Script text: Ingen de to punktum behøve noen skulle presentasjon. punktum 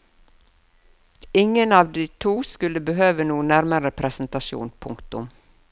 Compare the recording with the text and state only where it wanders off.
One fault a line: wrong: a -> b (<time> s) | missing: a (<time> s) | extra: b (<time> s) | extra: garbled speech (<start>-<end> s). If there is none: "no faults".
extra: av (1.7 s)
wrong: punktum -> skulle (2.4 s)
wrong: skulle -> nærmere (3.5 s)